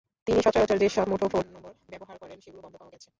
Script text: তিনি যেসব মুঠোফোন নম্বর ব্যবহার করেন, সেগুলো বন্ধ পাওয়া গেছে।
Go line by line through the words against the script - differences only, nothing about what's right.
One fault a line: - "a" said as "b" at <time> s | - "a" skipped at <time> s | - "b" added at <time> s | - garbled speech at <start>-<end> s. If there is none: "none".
- "সচরাচর" added at 0.4 s